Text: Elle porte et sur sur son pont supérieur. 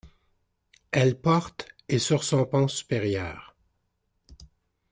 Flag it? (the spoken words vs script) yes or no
yes